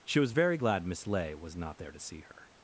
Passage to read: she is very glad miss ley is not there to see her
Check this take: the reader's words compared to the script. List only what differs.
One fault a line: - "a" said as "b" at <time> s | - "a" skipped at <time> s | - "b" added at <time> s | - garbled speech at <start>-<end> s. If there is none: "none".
- "is" said as "was" at 0.2 s
- "is" said as "was" at 1.3 s